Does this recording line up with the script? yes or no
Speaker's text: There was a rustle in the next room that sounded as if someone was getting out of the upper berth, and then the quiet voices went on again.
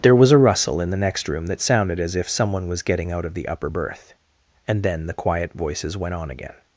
yes